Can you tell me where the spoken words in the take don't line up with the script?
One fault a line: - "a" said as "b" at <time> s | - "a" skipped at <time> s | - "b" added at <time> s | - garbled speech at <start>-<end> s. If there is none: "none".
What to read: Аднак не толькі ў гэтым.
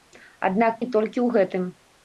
none